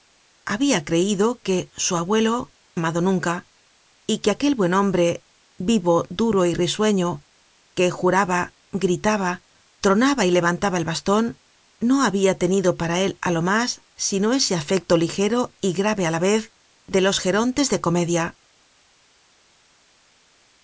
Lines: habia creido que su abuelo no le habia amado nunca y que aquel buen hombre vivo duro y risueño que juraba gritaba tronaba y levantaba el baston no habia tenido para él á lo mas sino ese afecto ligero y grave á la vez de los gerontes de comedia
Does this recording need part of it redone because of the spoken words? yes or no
yes